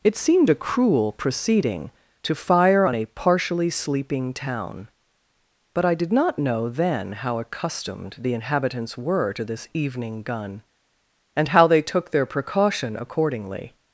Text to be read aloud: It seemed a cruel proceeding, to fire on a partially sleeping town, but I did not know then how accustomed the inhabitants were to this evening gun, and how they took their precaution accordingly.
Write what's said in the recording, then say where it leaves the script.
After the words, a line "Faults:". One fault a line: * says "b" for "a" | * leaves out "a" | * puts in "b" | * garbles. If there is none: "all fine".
It seemed a cruel proceeding, to fire on a partially sleeping town, but I did not know then how accustomed the inhabitants were to this evening gun, and how they took their precaution accordingly.
Faults:
all fine